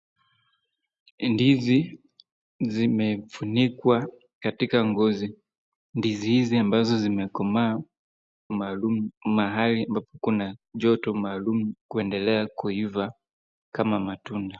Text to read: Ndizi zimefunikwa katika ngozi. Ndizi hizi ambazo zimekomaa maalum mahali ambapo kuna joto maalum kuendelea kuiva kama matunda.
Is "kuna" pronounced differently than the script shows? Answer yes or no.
no